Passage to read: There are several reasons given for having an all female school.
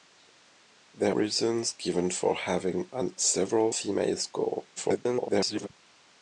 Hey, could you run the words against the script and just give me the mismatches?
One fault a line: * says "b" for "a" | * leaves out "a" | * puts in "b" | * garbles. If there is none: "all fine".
* leaves out "are several"
* says "several" for "all"
* garbles